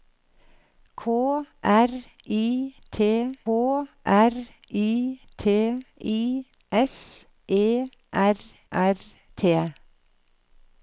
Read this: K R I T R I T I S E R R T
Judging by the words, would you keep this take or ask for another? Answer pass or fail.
pass